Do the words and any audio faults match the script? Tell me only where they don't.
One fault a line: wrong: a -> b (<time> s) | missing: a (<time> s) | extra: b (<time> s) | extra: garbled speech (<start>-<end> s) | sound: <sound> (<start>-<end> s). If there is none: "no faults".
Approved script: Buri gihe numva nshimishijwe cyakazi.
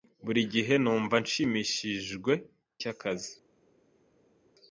no faults